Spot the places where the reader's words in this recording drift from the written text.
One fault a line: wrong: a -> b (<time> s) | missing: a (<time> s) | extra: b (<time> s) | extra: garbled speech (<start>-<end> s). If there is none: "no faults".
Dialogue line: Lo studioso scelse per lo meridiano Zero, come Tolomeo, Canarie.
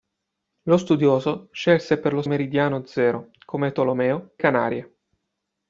no faults